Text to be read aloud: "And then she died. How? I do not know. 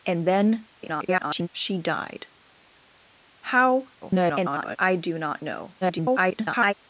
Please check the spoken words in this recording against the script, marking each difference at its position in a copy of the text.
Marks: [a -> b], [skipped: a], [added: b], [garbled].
"And then [garbled] she died. How? [garbled] I do not know. [garbled]